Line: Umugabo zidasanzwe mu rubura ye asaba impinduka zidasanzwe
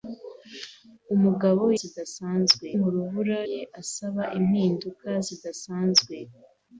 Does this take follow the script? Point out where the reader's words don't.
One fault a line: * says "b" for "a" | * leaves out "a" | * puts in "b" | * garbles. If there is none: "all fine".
all fine